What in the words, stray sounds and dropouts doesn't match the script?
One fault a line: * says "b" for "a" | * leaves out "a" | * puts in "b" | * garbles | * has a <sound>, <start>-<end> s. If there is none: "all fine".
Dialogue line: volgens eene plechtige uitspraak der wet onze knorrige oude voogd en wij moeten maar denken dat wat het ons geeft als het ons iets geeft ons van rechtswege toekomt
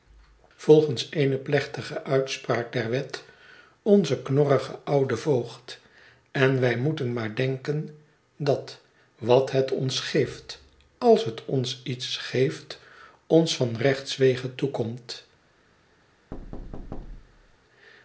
* has a thud, 16.3-17.6 s